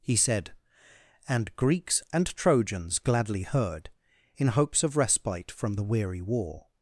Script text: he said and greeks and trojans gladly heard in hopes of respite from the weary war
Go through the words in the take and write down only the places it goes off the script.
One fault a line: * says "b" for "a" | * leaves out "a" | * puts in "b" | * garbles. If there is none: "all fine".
all fine